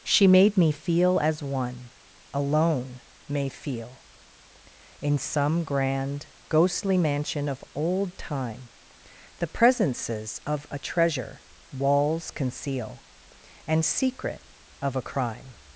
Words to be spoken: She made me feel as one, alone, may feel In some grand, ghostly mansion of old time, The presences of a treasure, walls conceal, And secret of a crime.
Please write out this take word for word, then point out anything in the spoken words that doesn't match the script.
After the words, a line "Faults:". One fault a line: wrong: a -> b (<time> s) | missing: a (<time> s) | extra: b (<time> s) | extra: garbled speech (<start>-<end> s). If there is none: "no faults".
She made me feel as one, alone, may feel In some grand, ghostly mansion of old time, The presences of a treasure, walls conceal, And secret of a crime.
Faults:
no faults